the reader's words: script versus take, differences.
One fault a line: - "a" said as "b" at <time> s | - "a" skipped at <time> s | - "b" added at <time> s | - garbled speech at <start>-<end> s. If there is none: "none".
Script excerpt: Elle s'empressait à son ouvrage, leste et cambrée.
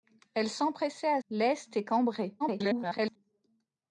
- "son ouvrage" skipped at 1.2 s
- garbled speech at 2.4-3.2 s